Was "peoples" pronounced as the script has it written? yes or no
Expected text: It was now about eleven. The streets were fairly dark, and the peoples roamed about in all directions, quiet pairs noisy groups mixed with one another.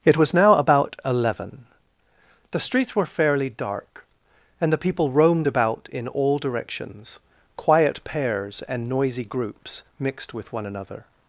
no